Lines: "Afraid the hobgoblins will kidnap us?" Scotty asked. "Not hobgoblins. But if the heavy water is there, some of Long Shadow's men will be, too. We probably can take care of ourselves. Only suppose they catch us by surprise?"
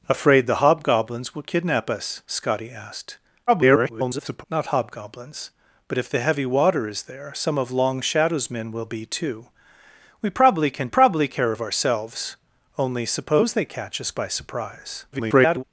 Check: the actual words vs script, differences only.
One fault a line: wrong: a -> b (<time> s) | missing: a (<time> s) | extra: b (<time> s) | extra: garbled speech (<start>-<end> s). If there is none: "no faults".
extra: garbled speech (3.5-4.4 s)
wrong: take -> probably (10.9 s)
extra: garbled speech (15.1-15.6 s)